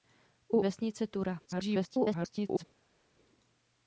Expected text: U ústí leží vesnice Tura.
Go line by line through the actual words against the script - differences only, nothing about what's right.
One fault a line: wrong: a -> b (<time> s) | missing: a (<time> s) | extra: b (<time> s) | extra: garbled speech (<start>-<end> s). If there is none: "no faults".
missing: ústí leží (0.6 s)
extra: garbled speech (1.5-2.6 s)